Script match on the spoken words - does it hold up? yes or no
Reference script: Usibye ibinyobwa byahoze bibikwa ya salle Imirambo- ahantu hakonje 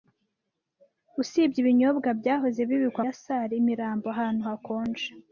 yes